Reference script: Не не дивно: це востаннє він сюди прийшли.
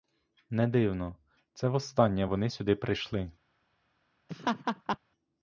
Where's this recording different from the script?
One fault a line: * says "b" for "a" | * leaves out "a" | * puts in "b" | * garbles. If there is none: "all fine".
* leaves out "не"
* says "вони" for "він"